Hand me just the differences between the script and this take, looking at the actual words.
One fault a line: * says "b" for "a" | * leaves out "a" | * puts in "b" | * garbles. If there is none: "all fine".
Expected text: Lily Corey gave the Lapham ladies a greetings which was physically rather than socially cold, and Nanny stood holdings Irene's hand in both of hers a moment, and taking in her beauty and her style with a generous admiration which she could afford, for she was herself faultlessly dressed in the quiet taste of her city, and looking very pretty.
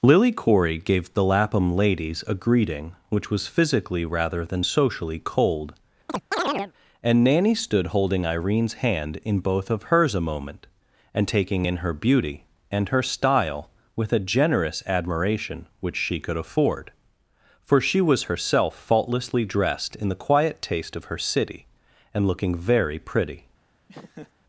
* says "greeting" for "greetings"
* says "holding" for "holdings"